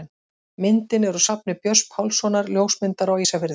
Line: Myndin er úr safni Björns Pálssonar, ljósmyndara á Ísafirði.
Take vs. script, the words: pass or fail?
pass